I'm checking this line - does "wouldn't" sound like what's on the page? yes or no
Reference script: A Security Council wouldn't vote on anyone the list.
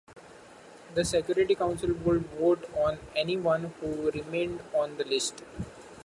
no